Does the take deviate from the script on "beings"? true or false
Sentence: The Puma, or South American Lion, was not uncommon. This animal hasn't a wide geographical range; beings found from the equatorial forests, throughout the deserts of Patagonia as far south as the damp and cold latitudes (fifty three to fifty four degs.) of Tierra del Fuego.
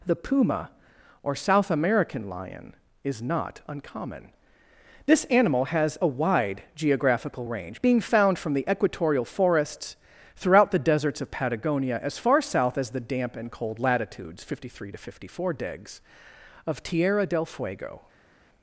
true